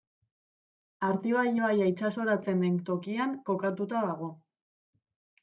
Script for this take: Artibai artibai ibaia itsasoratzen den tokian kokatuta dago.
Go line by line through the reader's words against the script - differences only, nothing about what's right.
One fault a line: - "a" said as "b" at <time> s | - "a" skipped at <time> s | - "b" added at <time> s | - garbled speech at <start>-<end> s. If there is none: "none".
- "artibai" skipped at 1.4 s